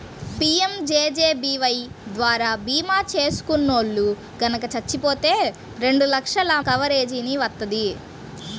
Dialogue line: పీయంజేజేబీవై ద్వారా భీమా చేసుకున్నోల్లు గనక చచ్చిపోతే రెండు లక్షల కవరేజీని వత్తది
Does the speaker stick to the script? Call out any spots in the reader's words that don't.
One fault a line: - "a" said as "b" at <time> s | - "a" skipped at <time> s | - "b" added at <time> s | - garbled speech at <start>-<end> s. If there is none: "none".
none